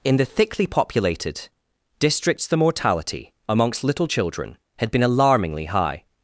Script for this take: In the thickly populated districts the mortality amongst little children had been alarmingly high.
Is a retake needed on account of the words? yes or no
no